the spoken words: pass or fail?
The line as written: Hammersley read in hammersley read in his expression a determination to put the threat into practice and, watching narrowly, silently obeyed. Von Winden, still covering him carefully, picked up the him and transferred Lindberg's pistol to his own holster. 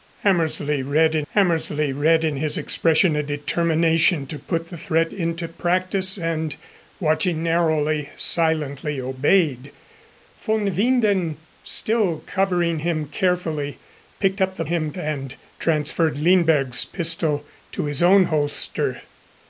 pass